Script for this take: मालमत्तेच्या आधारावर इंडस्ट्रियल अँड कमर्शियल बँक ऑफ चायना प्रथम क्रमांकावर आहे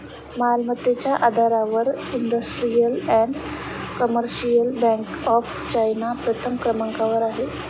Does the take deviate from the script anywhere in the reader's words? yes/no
no